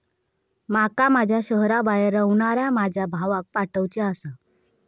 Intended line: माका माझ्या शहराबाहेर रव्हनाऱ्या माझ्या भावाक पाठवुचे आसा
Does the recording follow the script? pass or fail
pass